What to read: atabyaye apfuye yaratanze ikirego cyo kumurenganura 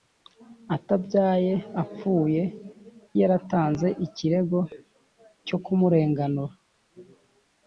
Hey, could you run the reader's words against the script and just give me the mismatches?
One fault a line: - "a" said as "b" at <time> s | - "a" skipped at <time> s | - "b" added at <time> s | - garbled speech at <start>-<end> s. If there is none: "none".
none